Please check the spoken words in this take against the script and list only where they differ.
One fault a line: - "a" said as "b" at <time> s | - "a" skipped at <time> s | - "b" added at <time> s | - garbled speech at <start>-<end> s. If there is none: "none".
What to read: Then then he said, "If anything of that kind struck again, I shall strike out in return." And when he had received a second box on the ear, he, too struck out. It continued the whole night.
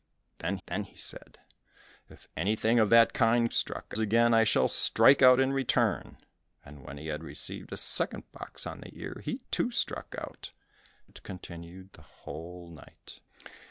none